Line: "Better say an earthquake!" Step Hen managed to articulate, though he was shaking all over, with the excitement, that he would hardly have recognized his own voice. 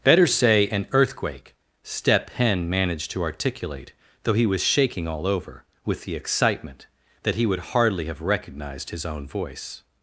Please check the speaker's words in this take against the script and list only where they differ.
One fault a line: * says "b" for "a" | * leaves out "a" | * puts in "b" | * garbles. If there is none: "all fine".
all fine